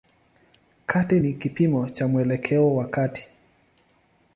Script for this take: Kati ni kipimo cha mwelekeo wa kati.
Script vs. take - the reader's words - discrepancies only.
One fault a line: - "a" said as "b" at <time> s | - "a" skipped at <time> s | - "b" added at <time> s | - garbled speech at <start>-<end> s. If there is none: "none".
none